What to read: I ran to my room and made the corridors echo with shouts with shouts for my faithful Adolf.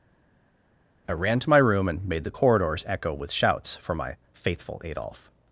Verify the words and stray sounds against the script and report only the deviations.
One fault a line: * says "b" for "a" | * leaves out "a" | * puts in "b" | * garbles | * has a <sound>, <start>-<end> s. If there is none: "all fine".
* leaves out "with shouts"